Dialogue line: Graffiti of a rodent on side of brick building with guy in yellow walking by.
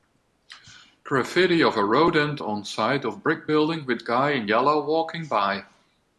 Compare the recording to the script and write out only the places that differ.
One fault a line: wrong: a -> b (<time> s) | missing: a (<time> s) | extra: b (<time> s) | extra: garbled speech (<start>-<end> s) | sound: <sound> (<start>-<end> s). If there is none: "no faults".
no faults